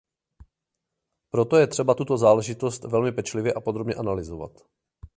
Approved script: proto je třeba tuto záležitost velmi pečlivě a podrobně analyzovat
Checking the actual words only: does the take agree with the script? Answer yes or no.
yes